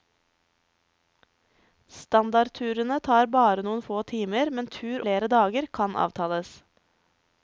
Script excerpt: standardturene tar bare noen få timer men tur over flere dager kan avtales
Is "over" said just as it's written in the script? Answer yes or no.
no